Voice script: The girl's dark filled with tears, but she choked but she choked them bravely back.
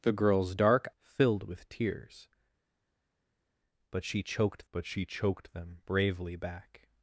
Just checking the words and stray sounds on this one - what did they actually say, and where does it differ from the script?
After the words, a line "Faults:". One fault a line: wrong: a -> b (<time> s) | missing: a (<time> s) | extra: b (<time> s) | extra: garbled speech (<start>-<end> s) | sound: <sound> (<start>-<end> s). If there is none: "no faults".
The girl's dark filled with tears, but she choked but she choked them bravely back.
Faults:
no faults